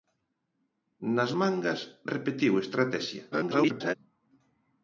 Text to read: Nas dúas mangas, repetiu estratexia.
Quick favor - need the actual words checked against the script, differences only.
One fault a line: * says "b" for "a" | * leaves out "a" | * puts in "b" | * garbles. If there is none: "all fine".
* leaves out "dúas"
* garbles